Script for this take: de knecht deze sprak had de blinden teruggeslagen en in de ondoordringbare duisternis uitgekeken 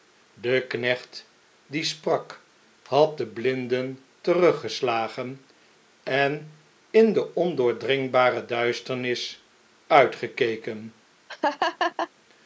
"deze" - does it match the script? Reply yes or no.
no